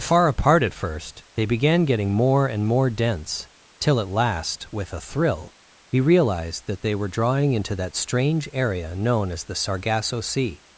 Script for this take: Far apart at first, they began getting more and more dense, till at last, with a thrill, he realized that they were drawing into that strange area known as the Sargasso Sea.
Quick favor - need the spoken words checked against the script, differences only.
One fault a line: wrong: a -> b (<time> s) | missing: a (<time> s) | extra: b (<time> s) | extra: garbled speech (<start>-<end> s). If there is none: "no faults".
no faults